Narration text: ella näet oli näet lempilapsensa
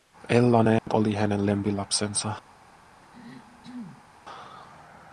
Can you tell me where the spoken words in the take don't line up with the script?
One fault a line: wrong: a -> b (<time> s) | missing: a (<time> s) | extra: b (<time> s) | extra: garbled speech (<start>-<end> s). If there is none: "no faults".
wrong: näet -> hänen (1.1 s)